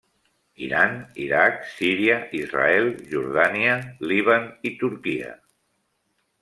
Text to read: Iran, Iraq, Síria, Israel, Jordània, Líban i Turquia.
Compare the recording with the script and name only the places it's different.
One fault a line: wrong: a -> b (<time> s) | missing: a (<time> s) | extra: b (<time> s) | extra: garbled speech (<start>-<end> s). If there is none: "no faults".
no faults